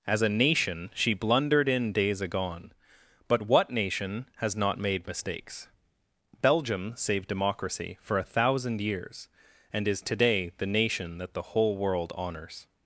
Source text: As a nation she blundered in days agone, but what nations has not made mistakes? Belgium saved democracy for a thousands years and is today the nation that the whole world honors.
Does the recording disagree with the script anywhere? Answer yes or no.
yes